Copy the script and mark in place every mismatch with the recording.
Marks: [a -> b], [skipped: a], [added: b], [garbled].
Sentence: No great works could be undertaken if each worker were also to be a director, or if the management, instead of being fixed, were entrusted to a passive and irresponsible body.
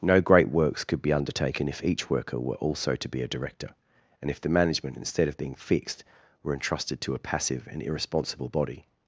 No great works could be undertaken if each worker were also to be a director, [or -> and] if the management, instead of being fixed, were entrusted to a passive and irresponsible body.